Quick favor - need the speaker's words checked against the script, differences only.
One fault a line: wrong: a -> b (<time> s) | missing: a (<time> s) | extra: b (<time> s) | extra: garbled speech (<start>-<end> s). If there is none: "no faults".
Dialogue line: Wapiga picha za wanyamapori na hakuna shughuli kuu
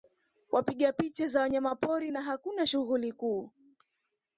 no faults